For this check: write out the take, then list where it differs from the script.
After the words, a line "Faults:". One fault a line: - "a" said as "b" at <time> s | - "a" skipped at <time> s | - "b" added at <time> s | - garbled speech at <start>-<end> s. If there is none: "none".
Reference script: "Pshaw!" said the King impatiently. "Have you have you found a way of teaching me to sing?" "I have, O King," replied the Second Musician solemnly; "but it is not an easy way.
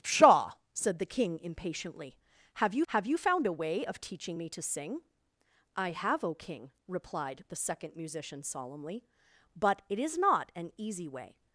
"Pshaw!" said the King impatiently. "Have you have you found a way of teaching me to sing?" "I have, O King," replied the Second Musician solemnly; "but it is not an easy way.
Faults:
none